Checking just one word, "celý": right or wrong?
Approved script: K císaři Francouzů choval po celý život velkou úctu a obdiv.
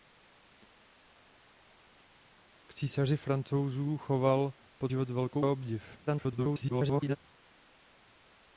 wrong